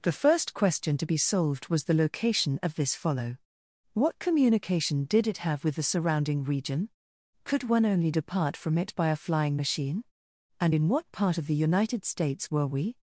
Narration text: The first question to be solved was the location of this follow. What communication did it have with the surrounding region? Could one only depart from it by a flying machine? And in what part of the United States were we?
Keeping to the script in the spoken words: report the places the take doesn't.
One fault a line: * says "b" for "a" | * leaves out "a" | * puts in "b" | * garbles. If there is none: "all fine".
all fine